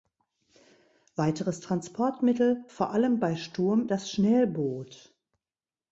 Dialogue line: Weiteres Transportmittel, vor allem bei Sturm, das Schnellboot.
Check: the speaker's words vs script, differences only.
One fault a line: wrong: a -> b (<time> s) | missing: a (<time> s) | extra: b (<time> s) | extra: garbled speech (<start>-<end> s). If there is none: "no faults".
no faults